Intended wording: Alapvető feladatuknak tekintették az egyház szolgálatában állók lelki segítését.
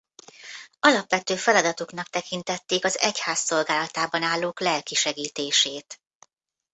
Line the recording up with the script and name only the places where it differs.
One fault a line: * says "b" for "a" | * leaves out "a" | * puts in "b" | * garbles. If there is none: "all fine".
all fine